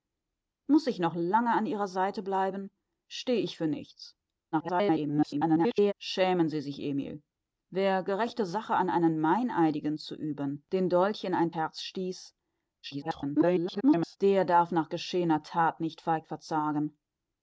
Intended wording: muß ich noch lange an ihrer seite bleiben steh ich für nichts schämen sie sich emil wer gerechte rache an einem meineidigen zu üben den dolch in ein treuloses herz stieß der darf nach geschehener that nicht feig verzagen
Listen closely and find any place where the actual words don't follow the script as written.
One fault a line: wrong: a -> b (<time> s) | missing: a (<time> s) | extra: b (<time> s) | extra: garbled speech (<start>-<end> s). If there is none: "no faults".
extra: garbled speech (4.5-5.9 s)
missing: treuloses (11.5 s)
extra: garbled speech (12.8-14.2 s)